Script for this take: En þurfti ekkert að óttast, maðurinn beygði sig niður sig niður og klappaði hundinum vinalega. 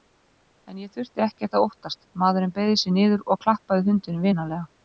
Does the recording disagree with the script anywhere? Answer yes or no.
yes